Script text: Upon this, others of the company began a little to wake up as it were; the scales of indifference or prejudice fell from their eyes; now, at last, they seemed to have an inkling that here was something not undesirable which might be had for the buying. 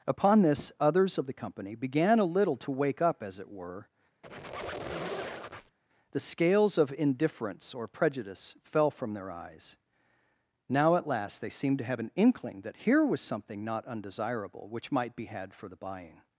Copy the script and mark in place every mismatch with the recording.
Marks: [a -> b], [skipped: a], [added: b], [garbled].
Upon this, others of the company began a little to wake up as it were; the scales of indifference or prejudice fell from their eyes; now, at last, they seemed to have an inkling that here was something not undesirable which might be had for the buying.